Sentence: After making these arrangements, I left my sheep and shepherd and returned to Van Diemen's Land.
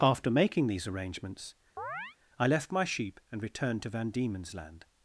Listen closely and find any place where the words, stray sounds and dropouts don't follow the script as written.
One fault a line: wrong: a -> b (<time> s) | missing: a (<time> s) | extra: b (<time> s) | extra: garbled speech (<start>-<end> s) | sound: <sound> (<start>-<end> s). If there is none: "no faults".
sound: chirp (1.8-2.2 s)
missing: shepherd and (3.4 s)